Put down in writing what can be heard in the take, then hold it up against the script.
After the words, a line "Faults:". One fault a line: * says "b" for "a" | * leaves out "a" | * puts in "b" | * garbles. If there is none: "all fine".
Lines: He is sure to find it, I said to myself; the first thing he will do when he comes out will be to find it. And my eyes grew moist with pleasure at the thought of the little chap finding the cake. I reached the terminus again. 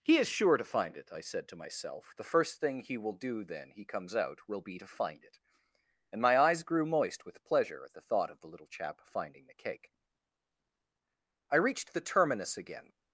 He is sure to find it, I said to myself; the first thing he will do then he comes out will be to find it. And my eyes grew moist with pleasure at the thought of the little chap finding the cake. I reached the terminus again.
Faults:
* says "then" for "when"